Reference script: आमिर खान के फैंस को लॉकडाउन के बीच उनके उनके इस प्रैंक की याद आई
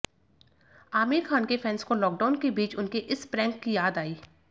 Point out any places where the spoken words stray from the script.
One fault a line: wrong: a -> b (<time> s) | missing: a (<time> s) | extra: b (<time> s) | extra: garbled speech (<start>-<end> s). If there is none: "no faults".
missing: उनके (3.0 s)